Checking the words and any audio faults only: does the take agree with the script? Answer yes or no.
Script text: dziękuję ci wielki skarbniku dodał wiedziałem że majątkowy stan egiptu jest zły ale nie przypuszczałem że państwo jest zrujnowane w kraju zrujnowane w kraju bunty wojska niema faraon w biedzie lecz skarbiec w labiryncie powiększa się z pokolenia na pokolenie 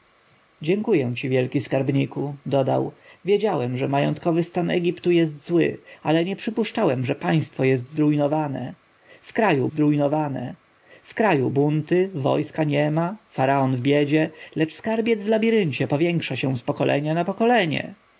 yes